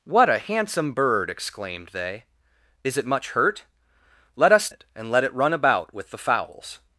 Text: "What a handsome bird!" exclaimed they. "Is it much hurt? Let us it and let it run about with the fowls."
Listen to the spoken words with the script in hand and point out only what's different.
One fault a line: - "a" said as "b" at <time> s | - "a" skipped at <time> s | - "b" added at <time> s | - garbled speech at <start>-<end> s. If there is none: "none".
none